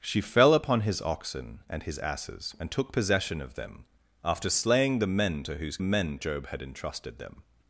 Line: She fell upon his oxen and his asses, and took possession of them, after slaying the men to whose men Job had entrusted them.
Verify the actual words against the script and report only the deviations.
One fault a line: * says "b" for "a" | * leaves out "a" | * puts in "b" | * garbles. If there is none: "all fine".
all fine